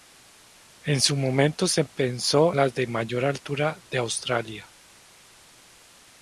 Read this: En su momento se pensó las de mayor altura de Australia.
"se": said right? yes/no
yes